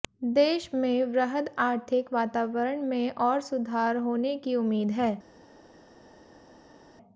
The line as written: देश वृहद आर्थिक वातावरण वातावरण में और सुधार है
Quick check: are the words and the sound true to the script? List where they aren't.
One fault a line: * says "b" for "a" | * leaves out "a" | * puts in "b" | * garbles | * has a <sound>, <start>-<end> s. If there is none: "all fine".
* puts in "में"
* leaves out "वातावरण"
* puts in "होने की उम्मीद"